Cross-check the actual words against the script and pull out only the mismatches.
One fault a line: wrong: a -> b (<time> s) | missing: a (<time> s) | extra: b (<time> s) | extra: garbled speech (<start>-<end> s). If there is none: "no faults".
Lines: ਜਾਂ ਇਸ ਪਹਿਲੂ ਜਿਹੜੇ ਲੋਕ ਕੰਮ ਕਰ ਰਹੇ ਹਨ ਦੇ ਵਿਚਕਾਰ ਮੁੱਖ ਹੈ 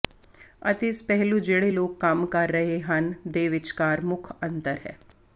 wrong: ਜਾਂ -> ਅਤੇ (0.6 s)
extra: ਅੰਤਰ (4.4 s)